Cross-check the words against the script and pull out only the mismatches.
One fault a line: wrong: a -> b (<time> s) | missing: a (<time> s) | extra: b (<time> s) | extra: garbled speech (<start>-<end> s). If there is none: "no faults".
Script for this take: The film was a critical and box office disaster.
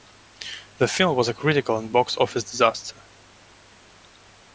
no faults